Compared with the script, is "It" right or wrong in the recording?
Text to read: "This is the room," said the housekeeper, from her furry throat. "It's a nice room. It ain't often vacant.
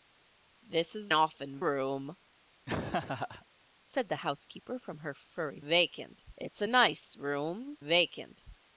wrong